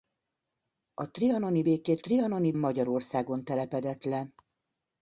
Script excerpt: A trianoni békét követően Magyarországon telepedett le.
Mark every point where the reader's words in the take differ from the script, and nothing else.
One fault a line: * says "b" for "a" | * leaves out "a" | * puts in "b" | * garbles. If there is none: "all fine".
* says "trianoni" for "követően"